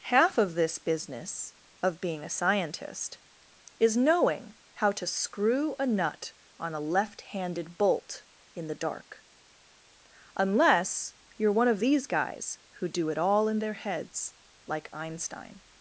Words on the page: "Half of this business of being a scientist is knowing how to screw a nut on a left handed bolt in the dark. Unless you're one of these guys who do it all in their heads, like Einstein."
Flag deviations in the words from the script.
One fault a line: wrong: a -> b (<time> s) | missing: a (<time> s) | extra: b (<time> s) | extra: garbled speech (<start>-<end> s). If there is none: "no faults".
no faults